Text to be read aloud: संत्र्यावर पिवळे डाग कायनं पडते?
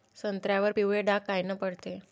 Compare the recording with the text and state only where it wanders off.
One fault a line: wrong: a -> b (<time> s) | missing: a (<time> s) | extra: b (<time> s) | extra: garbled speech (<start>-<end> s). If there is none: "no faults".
no faults